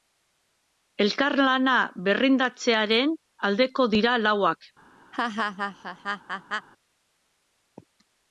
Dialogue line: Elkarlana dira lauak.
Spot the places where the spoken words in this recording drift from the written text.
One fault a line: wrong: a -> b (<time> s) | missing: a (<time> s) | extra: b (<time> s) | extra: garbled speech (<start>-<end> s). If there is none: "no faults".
extra: berrindartzearen aldeko (2.1 s)